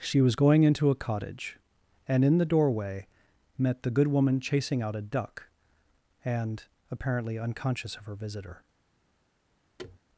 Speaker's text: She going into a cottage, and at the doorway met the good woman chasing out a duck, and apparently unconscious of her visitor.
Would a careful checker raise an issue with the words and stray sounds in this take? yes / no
yes